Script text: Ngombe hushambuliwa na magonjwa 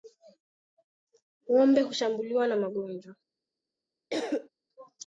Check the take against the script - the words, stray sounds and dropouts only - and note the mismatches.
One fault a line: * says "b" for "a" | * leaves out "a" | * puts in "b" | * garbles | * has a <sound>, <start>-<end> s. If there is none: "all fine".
* has a cough, 4.1-4.5 s